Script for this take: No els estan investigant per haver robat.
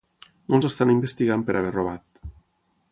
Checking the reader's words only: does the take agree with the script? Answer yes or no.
yes